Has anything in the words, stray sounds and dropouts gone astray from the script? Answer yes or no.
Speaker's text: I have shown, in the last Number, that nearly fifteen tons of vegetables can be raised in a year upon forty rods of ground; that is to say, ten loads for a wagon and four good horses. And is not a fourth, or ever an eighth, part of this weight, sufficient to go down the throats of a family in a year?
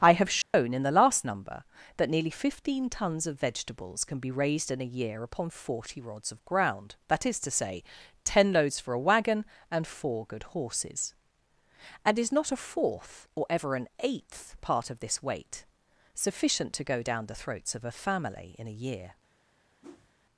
yes